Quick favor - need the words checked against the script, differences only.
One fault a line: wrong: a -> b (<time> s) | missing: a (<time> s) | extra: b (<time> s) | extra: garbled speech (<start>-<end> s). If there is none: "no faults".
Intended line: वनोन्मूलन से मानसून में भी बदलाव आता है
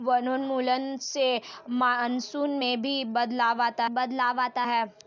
extra: बदलाव आता (3.9 s)